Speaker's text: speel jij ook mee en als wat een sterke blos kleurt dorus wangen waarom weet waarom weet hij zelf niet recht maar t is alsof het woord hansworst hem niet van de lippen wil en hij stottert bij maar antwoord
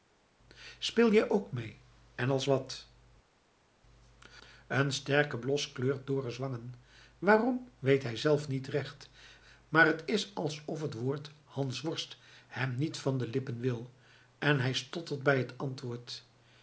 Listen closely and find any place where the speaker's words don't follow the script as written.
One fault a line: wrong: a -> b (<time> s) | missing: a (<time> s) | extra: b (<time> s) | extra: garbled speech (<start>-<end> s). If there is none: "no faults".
missing: waarom weet (8.0 s)
wrong: maar -> het (15.4 s)